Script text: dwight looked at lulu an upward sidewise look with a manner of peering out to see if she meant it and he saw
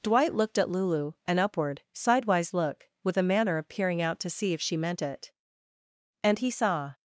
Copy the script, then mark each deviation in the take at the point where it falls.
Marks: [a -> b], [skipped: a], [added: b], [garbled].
dwight looked at lulu an upward sidewise look with a manner of peering out to see if she meant it and he saw